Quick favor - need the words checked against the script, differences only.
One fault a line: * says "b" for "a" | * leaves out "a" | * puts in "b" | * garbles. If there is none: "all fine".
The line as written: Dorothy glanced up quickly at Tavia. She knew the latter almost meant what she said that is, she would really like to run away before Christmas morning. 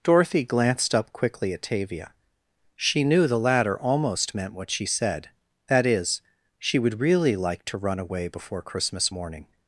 all fine